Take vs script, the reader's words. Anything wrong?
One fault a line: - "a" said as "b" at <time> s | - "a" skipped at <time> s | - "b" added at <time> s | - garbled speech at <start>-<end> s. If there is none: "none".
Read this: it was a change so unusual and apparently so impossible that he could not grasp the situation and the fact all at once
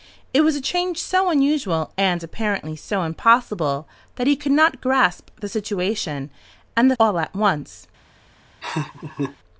- "fact" skipped at 6.9 s